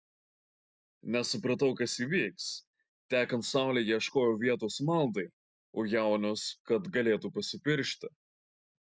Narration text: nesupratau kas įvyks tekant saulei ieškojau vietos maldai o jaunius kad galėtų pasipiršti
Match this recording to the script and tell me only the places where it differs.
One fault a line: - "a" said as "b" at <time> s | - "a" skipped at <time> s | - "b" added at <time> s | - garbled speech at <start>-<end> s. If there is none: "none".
none